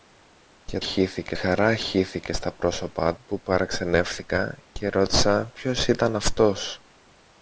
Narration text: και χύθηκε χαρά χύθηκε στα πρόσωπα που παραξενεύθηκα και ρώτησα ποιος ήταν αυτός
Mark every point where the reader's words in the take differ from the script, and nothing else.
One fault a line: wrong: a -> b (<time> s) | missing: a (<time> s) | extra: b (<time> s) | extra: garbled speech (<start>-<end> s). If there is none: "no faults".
no faults